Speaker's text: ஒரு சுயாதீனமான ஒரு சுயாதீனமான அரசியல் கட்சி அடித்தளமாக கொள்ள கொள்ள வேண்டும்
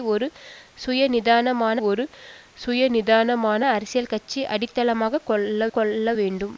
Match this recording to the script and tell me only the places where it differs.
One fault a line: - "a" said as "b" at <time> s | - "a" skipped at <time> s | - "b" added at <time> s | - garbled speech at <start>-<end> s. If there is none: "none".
none